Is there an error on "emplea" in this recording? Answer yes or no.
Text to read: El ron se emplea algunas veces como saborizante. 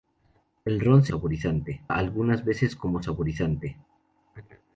yes